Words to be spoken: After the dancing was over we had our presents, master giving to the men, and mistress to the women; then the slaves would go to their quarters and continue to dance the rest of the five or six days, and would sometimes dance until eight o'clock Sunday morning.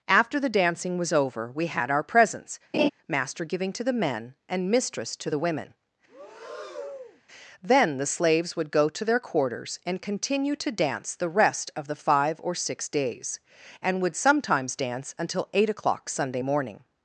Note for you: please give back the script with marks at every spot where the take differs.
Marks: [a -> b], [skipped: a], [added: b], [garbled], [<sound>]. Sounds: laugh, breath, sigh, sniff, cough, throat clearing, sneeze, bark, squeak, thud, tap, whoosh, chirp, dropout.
After the dancing was over we had our presents, [laugh] master giving to the men, and mistress to the women; [breath] then the slaves would go to their quarters and continue to dance the rest of the five or six days, and would sometimes dance until eight o'clock Sunday morning.